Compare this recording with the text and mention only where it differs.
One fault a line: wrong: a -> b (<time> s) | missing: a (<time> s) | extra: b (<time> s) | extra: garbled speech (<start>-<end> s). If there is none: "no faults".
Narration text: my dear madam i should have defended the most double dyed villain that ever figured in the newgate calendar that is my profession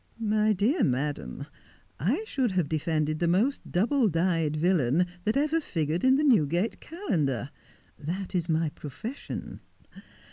no faults